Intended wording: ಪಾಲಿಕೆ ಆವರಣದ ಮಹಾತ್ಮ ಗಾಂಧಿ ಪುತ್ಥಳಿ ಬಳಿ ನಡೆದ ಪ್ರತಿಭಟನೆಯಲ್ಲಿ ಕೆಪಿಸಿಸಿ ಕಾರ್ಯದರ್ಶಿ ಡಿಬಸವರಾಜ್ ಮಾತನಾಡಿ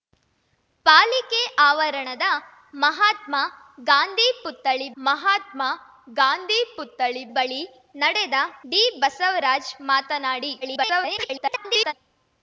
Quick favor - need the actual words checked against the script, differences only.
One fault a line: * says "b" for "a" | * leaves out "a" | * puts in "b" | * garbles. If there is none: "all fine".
* says "ಮಹಾತ್ಮ ಗಾಂಧಿ ಪುತ್ಥಳಿ ಬಳಿ ನಡೆದ" for "ಬಳಿ ನಡೆದ ಪ್ರತಿಭಟನೆಯಲ್ಲಿ ಕೆಪಿಸಿಸಿ ಕಾರ್ಯದರ್ಶಿ"
* garbles